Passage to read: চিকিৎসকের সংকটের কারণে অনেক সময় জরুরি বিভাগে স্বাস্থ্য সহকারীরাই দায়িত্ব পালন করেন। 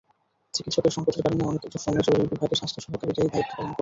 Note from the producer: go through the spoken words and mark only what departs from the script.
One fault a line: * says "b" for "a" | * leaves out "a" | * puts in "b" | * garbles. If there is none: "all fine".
all fine